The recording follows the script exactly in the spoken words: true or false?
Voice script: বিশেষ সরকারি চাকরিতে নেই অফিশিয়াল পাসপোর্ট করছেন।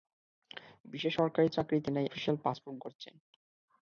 true